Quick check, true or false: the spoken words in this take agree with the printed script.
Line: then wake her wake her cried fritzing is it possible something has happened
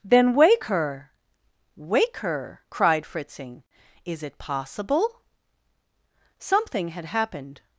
false